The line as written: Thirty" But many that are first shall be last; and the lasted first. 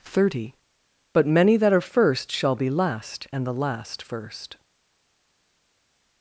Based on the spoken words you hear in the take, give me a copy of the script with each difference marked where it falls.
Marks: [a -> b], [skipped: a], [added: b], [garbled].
Thirty" But many that are first shall be last; and the [lasted -> last] first.